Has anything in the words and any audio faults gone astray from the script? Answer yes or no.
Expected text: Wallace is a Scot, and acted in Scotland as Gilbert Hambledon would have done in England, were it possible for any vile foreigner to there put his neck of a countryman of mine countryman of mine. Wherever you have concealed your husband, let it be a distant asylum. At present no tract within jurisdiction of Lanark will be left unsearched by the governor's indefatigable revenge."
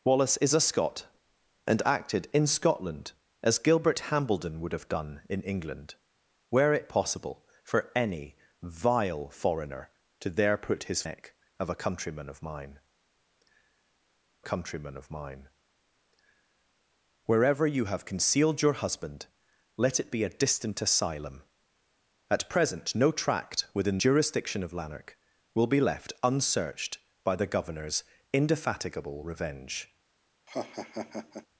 yes